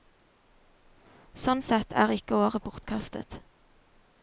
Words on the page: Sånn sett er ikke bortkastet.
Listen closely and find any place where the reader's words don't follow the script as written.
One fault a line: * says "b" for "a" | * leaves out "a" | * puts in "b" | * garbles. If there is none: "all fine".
* puts in "året"